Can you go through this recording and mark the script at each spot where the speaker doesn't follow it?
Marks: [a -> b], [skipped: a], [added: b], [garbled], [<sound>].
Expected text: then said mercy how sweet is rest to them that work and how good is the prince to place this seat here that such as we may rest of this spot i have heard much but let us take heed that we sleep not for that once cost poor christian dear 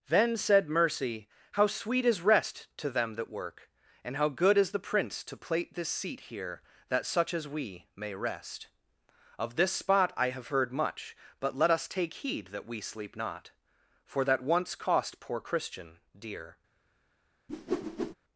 then said mercy how sweet is rest to them that work and how good is the prince to [place -> plate] this seat here that such as we may rest of this spot i have heard much but let us take heed that we sleep not for that once cost poor christian dear [whoosh]